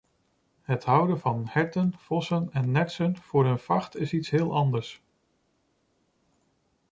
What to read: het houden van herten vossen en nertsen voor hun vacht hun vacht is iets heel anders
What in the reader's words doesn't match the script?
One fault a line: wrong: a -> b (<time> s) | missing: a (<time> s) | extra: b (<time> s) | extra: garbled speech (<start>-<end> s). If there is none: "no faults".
missing: hun vacht (4.0 s)